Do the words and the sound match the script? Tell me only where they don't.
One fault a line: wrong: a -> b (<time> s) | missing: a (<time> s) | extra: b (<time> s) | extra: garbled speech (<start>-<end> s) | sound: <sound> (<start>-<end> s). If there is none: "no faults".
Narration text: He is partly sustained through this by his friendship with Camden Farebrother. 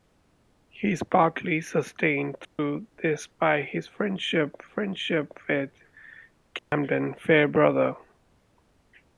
sound: dropout (2.4-2.6 s)
extra: friendship (4.6 s)
sound: dropout (6.6-6.7 s)